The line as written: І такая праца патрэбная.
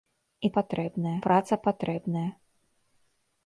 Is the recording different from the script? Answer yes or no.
yes